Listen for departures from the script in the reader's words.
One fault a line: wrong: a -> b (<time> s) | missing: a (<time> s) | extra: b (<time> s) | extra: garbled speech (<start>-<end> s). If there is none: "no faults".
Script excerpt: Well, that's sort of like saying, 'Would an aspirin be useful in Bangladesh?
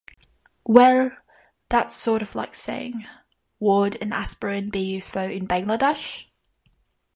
no faults